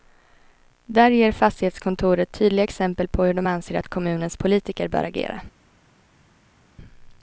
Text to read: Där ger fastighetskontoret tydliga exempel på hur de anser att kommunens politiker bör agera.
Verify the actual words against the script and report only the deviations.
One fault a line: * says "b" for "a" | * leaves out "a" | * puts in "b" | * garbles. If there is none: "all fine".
all fine